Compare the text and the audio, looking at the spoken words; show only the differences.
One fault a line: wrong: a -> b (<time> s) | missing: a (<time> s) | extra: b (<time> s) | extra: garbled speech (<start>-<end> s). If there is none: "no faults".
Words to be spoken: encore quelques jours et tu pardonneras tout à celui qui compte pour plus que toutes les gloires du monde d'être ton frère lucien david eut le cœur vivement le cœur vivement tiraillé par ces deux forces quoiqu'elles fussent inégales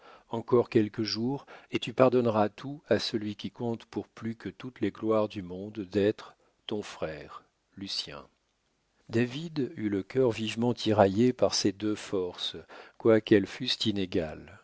missing: le cœur vivement (10.7 s)